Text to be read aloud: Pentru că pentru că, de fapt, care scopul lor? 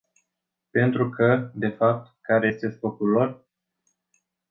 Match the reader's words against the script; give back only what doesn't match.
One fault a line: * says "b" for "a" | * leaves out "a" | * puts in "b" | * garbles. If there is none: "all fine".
* leaves out "pentru că"
* puts in "este"